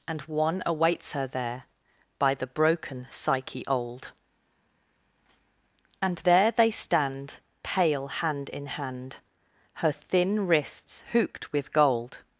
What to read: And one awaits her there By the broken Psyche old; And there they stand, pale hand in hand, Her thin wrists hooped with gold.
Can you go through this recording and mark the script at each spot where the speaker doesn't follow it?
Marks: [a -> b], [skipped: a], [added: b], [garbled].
And one awaits her there By the broken Psyche old; And there they stand, pale hand in hand, Her thin wrists hooped with gold.